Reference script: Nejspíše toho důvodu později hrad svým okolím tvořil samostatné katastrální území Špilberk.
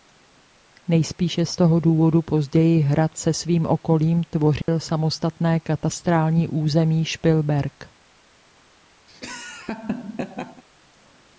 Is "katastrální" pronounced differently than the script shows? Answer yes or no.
no